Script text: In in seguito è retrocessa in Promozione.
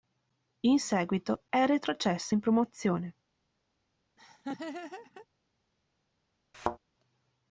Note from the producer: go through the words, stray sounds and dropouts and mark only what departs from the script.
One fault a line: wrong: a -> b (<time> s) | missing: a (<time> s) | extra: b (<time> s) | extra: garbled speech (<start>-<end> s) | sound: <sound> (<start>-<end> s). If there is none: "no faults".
missing: in (0.8 s)
sound: laugh (4.2-5.3 s)
sound: thud (6.5-6.8 s)